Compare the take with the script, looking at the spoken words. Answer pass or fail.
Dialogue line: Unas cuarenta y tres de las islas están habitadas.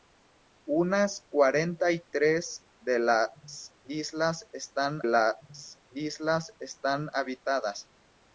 fail